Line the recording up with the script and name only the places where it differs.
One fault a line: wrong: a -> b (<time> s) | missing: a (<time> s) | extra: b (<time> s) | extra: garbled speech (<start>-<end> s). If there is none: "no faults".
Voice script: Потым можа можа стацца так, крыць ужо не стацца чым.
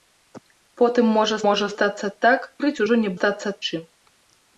no faults